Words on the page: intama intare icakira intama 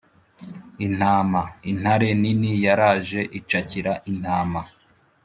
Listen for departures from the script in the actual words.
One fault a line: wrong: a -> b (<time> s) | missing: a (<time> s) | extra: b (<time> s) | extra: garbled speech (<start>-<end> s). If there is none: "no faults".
extra: nini yaraje (2.2 s)